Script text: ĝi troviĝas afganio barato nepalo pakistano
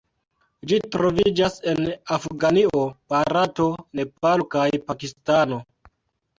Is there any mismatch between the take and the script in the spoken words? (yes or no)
yes